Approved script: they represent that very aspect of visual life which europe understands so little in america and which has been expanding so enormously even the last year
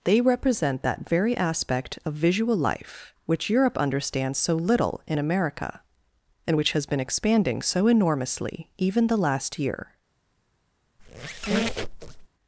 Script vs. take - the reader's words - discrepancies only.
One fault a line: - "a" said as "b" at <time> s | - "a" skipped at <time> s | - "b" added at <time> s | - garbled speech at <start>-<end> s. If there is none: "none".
none